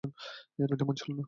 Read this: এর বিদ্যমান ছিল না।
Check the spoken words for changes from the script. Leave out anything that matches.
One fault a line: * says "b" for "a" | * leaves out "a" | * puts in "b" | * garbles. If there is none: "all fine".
all fine